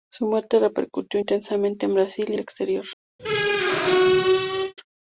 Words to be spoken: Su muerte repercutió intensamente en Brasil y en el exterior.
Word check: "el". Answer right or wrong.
wrong